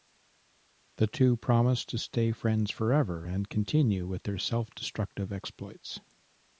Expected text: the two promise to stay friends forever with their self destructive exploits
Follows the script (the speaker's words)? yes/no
no